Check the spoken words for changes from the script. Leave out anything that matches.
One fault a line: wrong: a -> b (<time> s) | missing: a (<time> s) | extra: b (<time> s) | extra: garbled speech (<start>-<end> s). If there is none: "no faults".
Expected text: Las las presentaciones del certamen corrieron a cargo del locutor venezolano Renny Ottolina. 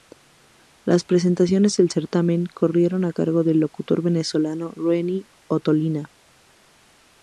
missing: las (1.0 s)